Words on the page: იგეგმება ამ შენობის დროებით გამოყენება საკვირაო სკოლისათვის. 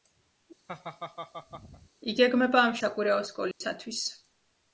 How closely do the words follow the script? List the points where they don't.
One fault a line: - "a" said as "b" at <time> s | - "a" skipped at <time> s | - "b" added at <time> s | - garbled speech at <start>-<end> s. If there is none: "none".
- "შენობის დროებით გამოყენება" skipped at 2.7 s